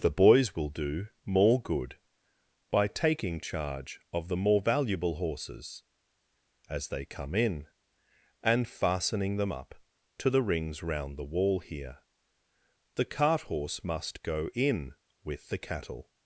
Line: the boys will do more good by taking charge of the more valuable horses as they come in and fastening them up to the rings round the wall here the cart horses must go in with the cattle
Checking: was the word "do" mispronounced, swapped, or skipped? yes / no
no